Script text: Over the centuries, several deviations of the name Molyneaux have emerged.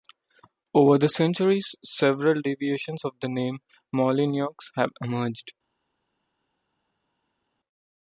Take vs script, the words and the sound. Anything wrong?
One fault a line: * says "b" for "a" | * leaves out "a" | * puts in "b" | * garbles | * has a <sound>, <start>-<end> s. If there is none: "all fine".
all fine